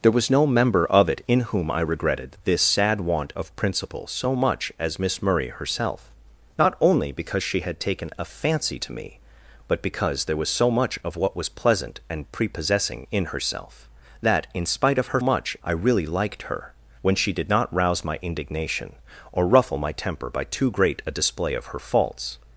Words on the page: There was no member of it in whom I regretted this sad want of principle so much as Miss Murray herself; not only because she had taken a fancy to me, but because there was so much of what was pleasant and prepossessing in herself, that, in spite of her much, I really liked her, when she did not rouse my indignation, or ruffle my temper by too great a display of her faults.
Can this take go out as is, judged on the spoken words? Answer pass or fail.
pass